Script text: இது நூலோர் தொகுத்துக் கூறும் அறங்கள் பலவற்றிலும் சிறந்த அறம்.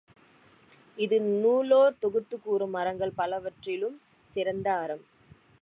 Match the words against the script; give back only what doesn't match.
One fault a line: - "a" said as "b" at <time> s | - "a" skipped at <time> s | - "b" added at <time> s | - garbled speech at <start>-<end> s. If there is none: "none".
none